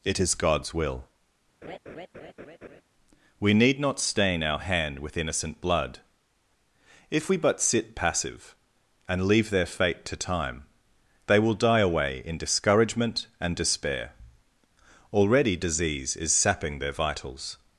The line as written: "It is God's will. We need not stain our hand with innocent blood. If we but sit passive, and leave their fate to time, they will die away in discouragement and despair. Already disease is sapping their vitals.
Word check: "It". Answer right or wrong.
right